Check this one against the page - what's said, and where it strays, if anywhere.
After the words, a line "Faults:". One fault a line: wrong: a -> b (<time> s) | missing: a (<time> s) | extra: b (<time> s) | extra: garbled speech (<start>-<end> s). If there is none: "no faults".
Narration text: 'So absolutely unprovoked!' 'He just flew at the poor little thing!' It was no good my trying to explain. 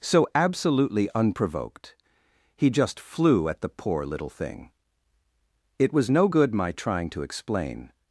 'So absolutely unprovoked!' 'He just flew at the poor little thing!' It was no good my trying to explain.
Faults:
no faults